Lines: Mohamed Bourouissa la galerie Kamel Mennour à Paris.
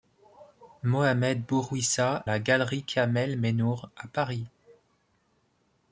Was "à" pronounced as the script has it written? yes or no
yes